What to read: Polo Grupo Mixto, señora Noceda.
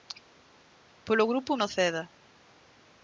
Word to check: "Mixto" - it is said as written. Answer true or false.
false